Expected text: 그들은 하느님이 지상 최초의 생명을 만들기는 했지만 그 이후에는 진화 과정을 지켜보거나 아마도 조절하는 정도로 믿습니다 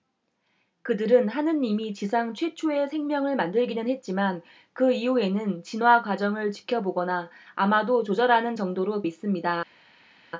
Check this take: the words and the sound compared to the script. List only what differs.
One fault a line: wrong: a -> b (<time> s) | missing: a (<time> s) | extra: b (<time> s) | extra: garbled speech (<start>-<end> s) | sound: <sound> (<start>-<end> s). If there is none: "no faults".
no faults